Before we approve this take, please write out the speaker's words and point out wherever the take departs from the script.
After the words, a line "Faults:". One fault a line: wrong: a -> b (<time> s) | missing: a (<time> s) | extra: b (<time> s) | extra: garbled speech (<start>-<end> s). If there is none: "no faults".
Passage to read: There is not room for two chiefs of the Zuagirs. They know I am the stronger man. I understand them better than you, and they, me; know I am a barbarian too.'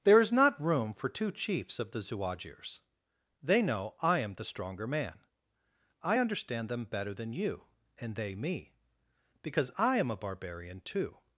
There is not room for two chiefs of the Zuagirs. They know I am the stronger man. I understand them better than you, and they, me; because I am a barbarian too.'
Faults:
wrong: know -> because (9.4 s)